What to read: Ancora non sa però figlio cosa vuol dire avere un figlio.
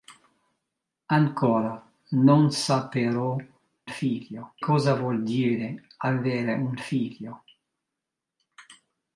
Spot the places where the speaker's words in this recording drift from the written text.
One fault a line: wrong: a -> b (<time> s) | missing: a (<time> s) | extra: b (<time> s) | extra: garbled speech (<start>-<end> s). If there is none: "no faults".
no faults